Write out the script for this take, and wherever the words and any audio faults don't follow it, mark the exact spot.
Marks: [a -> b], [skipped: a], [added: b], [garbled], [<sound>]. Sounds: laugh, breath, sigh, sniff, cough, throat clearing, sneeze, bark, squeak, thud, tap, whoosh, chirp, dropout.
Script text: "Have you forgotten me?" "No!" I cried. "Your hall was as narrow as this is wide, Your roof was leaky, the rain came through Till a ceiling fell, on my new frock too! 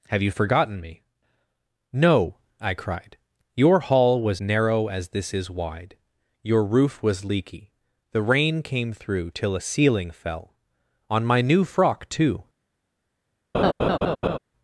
"Have you forgotten me?" "No!" I cried. "Your hall was [skipped: as] narrow as this is wide, Your roof was leaky, the rain came through Till a ceiling fell, on my new frock too! [laugh]